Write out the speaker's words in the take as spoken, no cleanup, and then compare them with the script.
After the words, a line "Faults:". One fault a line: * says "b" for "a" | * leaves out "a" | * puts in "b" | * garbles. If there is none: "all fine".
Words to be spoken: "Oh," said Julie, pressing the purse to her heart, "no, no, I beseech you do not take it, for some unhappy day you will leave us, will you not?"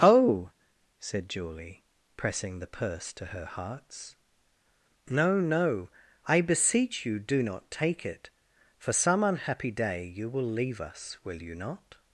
"Oh," said Julie, pressing the purse to her hearts, "no, no, I beseech you do not take it, for some unhappy day you will leave us, will you not?"
Faults:
* says "hearts" for "heart"